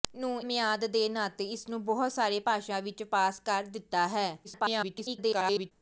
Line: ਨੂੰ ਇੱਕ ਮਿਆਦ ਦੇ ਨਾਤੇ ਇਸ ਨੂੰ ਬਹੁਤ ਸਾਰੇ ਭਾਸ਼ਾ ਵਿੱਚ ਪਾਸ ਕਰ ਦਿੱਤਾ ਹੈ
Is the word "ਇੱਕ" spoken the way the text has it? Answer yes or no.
no